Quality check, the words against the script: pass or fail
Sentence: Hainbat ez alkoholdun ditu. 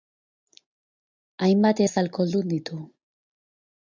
pass